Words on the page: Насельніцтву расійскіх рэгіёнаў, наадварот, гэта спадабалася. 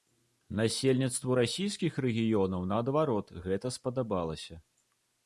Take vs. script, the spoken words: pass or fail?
pass